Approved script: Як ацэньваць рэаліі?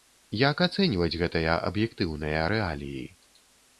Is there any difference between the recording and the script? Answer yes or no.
yes